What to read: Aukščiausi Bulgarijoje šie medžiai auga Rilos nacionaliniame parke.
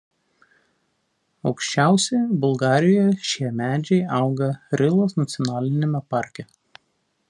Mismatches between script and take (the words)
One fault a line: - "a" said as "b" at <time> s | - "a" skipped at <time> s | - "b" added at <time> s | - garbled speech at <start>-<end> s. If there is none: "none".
none